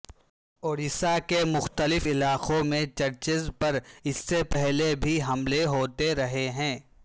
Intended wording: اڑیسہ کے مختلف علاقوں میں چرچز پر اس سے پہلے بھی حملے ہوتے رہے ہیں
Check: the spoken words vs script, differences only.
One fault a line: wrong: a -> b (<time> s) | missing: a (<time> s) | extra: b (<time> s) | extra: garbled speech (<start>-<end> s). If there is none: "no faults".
no faults